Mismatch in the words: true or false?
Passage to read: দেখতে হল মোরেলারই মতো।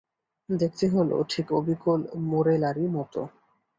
true